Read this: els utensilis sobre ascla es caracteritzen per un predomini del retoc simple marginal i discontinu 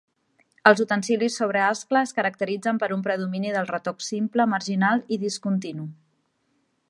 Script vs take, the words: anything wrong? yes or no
no